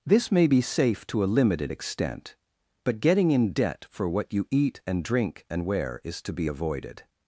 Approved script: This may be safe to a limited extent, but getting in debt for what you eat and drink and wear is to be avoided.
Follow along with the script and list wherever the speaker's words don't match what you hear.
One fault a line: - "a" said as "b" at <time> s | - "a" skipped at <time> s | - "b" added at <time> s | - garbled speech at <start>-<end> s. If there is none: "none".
none